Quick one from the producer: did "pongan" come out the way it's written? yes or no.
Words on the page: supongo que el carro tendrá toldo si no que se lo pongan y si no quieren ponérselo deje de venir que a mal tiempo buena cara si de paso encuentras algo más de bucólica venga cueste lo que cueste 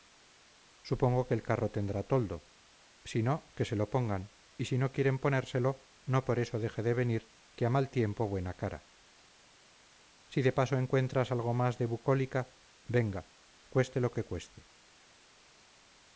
yes